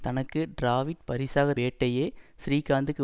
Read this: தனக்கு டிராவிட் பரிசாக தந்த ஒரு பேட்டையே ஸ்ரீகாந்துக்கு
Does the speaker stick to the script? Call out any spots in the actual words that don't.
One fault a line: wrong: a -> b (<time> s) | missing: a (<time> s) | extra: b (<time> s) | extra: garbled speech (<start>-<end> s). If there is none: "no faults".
missing: தந்த ஒரு (1.5 s)